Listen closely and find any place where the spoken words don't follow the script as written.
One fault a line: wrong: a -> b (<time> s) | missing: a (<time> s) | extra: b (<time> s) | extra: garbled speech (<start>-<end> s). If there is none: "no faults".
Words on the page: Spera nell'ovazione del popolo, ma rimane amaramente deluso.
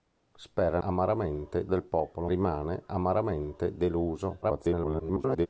wrong: nell'ovazione -> amaramente (0.8 s)
missing: ma (2.3 s)
extra: garbled speech (4.4-5.5 s)